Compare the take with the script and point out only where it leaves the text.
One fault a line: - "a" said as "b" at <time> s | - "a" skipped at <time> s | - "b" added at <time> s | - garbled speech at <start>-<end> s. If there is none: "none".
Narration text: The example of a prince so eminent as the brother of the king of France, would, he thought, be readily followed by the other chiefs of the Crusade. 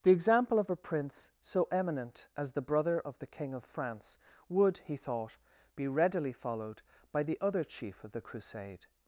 - "chiefs" said as "chief" at 7.6 s